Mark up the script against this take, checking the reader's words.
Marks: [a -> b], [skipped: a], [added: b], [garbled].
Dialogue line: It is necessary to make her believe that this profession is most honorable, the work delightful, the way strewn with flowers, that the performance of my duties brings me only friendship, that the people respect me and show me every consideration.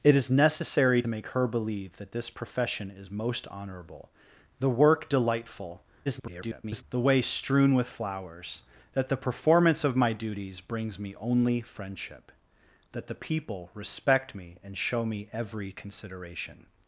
It is necessary [skipped: to] make her believe that this profession is most honorable, the work delightful, [garbled] the way strewn with flowers, that the performance of my duties brings me only friendship, that the people respect me and show me every consideration.